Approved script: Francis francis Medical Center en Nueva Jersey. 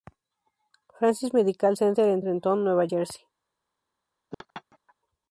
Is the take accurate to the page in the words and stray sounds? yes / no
no